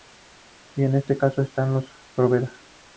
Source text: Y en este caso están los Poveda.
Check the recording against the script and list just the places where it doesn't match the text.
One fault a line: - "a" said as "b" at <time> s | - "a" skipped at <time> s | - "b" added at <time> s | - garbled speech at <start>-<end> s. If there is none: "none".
none